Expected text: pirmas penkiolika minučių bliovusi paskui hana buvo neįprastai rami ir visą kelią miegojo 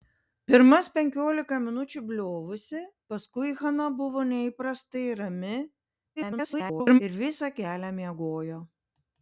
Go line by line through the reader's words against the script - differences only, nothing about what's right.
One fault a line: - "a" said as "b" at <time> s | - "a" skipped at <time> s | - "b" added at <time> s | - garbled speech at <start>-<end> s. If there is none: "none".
- garbled speech at 6.2-7.0 s